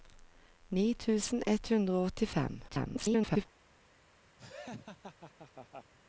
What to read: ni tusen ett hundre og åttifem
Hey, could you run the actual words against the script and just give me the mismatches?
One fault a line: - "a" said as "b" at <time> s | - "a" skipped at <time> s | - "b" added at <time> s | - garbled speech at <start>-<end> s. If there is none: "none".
- garbled speech at 2.7-3.5 s